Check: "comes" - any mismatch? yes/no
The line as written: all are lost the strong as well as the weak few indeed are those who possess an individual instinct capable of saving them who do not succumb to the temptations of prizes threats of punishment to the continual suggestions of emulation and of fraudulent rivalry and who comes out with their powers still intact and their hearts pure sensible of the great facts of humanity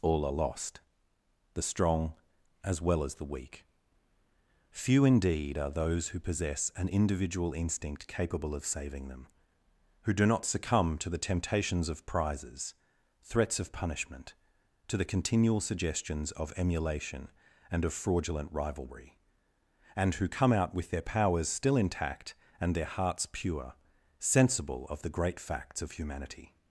yes